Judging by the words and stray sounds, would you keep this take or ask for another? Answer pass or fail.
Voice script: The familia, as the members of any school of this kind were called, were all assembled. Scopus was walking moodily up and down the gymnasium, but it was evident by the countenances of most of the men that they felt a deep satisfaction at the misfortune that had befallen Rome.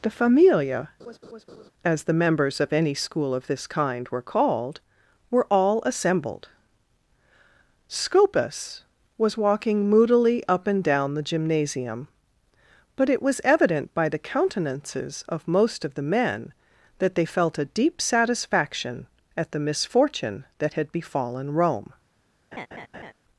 fail